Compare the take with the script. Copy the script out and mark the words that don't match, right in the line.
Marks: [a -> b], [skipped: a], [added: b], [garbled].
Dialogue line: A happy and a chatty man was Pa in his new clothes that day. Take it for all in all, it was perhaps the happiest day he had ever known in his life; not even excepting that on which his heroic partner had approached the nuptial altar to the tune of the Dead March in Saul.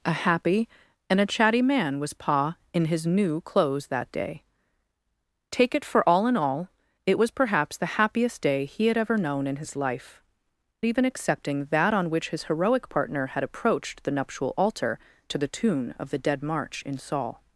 A happy and a chatty man was Pa in his new clothes that day. Take it for all in all, it was perhaps the happiest day he had ever known in his life; [skipped: not] even excepting that on which his heroic partner had approached the nuptial altar to the tune of the Dead March in Saul.